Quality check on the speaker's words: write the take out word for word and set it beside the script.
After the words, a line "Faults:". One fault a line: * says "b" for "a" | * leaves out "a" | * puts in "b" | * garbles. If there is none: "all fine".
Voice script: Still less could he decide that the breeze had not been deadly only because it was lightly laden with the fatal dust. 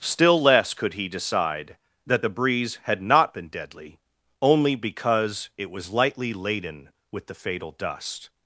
Still less could he decide that the breeze had not been deadly only because it was lightly laden with the fatal dust.
Faults:
all fine